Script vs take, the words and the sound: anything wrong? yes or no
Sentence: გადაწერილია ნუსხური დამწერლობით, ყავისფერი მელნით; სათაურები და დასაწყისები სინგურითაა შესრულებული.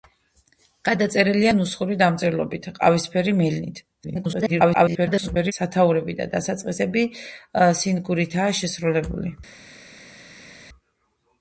yes